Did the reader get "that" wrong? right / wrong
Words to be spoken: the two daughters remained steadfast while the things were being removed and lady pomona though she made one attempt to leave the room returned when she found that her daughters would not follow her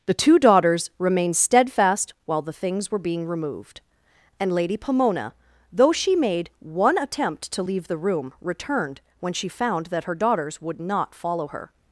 right